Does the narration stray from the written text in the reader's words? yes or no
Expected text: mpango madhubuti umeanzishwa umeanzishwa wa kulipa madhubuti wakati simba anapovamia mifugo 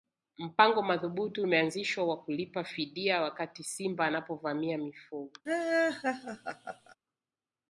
yes